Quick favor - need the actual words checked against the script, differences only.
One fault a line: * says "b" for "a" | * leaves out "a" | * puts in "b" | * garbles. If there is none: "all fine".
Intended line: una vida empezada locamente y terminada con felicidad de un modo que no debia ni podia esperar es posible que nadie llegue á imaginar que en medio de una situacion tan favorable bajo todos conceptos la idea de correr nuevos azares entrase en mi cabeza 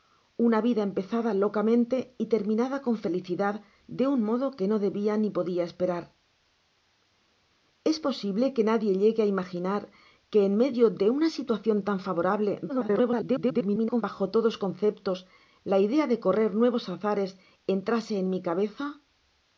* garbles